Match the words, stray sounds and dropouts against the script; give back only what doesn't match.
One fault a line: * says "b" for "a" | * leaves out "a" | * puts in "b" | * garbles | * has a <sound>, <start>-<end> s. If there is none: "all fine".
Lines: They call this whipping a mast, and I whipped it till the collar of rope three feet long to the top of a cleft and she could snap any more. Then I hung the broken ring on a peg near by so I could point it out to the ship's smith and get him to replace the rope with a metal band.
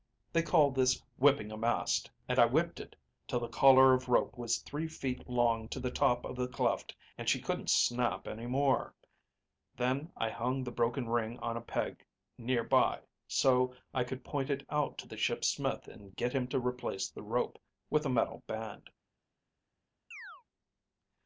* puts in "was"
* says "the" for "a"
* says "couldn't" for "could"
* has a chirp, 20.1-20.4 s